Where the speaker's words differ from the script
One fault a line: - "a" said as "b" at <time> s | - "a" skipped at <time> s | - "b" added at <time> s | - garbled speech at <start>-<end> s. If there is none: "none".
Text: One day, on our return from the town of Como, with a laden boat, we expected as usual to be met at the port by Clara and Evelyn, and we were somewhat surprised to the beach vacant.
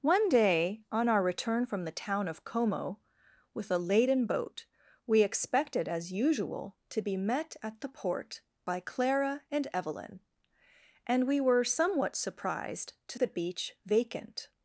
none